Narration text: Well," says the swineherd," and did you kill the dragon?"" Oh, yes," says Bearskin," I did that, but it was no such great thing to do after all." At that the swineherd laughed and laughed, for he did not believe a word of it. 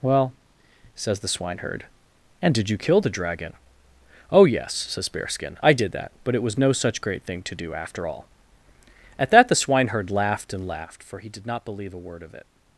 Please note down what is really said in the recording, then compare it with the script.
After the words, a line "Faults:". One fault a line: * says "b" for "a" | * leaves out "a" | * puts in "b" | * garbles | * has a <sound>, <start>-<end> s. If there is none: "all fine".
Well," says the swineherd," and did you kill the dragon?"" Oh, yes," says Bearskin," I did that, but it was no such great thing to do after all." At that the swineherd laughed and laughed, for he did not believe a word of it.
Faults:
all fine